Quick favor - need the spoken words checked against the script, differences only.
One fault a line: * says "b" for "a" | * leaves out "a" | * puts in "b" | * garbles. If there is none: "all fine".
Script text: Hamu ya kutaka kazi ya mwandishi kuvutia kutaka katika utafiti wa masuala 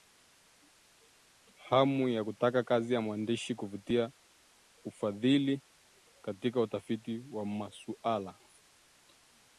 * says "ufadhili" for "kutaka"